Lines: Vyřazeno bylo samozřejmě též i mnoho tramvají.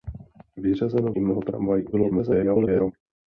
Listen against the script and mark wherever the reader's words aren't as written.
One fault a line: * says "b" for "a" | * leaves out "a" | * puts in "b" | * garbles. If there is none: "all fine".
* leaves out "bylo samozřejmě též"
* garbles